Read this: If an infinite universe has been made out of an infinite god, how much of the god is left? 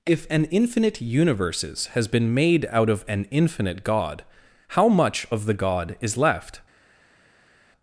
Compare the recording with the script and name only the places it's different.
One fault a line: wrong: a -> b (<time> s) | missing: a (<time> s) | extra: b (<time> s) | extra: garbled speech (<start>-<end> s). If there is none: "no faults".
wrong: universe -> universes (1.0 s)